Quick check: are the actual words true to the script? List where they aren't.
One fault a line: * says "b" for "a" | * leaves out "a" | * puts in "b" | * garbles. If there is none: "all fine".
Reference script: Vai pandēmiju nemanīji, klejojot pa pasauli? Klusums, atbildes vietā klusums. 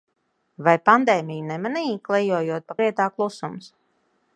* leaves out "pasauli Klusums atbildes"